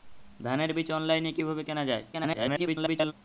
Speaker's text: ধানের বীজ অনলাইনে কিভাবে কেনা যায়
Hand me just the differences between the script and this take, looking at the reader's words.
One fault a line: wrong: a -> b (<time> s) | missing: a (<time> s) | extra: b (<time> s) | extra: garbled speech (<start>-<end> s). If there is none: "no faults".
extra: garbled speech (2.1-3.1 s)